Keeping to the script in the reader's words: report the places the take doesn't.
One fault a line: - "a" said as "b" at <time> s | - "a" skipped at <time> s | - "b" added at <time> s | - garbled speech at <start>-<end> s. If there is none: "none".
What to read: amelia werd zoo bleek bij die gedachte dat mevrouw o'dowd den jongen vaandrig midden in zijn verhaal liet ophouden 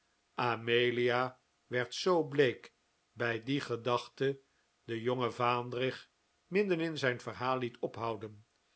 - "dat mevrouw o'dowd" skipped at 4.4 s